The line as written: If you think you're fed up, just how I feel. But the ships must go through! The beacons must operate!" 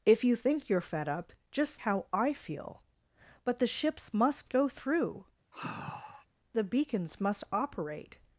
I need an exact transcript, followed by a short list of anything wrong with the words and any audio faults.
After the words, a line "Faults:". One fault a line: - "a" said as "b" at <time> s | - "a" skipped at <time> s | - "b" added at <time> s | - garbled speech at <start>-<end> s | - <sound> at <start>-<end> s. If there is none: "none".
If you think you're fed up, just how I feel. But the ships must go through! The beacons must operate!"
Faults:
- sigh at 5.5-6.3 s